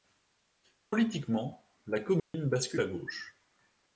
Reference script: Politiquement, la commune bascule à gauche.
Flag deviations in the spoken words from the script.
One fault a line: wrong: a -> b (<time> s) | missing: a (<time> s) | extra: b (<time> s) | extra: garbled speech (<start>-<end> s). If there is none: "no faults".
no faults